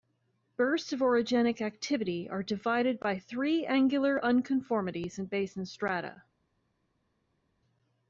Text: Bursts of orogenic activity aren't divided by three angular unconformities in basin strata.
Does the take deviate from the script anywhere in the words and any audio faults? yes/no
yes